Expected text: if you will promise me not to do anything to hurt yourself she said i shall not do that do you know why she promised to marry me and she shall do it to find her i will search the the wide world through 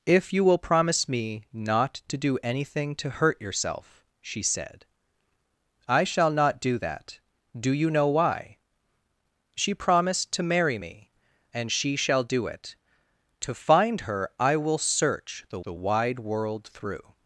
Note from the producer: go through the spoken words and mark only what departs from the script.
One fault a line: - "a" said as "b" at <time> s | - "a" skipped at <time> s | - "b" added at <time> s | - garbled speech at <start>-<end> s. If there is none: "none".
none